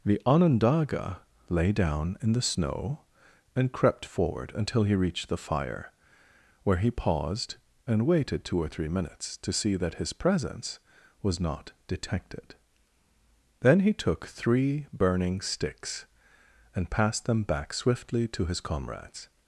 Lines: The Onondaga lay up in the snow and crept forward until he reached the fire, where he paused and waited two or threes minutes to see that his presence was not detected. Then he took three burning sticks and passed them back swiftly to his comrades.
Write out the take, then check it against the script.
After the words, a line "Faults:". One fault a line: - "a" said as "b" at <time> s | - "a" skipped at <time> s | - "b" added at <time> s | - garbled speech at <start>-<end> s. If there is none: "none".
The Onondaga lay down in the snow and crept forward until he reached the fire, where he paused and waited two or three minutes to see that his presence was not detected. Then he took three burning sticks and passed them back swiftly to his comrades.
Faults:
- "up" said as "down" at 1.7 s
- "threes" said as "three" at 8.7 s